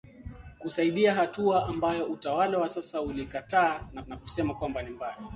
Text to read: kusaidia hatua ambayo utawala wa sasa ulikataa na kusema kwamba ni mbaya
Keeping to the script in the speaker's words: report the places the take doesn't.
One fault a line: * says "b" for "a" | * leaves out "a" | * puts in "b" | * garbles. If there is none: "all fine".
* puts in "na"